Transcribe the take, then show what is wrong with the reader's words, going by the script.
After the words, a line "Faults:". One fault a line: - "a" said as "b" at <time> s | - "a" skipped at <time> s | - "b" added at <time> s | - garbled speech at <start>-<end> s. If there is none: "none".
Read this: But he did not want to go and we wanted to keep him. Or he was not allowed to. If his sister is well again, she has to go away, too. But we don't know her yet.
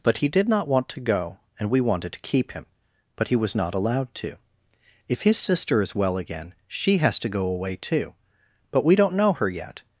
But he did not want to go and we wanted to keep him. But he was not allowed to. If his sister is well again, she has to go away, too. But we don't know her yet.
Faults:
- "Or" said as "But" at 3.1 s